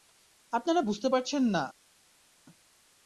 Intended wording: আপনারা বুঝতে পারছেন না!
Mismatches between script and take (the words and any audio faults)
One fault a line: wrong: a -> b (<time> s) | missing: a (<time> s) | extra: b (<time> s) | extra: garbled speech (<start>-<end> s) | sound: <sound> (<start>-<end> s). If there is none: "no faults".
no faults